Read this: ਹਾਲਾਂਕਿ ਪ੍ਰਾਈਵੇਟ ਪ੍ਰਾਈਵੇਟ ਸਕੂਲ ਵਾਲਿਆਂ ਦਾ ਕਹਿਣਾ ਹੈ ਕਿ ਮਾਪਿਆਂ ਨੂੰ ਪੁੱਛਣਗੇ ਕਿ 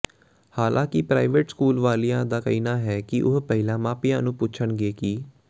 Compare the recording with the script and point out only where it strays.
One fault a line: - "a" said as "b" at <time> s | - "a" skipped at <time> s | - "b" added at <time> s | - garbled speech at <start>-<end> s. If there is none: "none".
- "ਪ੍ਰਾਈਵੇਟ" skipped at 1.5 s
- "ਉਹ ਪਹਿਲਾਂ" added at 3.2 s